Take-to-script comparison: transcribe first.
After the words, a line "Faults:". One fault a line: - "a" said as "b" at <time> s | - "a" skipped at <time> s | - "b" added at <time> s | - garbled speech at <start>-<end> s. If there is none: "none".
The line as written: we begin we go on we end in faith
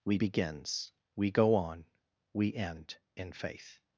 we begins we go on we end in faith
Faults:
- "begin" said as "begins" at 0.1 s